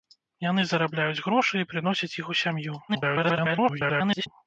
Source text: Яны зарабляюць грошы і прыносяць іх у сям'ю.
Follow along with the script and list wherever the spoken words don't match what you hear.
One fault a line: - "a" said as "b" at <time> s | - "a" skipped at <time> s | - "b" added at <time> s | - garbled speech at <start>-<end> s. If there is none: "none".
- garbled speech at 2.9-4.3 s